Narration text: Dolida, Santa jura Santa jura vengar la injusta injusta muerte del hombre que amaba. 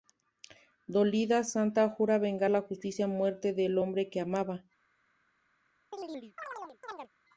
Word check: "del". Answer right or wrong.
right